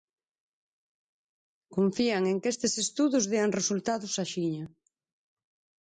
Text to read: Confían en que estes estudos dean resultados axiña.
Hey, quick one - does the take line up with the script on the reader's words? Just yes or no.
yes